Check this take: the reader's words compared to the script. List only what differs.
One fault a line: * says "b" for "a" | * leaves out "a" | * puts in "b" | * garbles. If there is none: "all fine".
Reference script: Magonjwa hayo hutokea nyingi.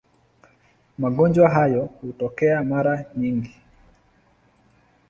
* puts in "mara"